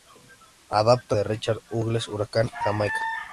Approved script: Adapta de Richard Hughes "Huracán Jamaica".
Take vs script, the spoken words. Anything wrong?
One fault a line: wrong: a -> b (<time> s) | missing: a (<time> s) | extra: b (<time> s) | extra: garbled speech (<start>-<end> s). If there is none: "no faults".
no faults